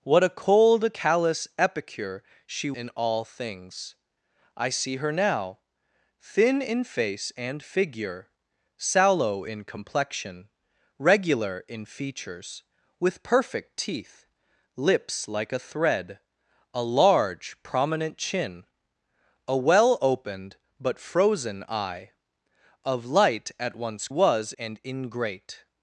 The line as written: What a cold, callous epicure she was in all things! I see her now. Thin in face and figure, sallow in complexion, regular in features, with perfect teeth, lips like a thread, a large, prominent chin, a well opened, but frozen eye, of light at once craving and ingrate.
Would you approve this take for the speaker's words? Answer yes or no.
no